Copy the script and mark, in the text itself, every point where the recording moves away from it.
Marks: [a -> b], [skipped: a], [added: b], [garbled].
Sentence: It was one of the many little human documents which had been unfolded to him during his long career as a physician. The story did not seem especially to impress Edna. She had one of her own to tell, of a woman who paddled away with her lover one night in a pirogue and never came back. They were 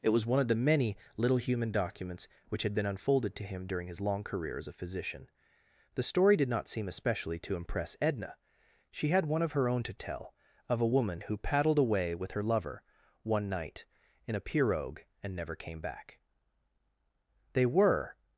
It was one of the many little human documents which had been unfolded to him during his long career as a physician. The story did not seem especially to impress Edna. She had one of her own to tell, of a woman who paddled away with her lover one night in a pirogue and never came back. They were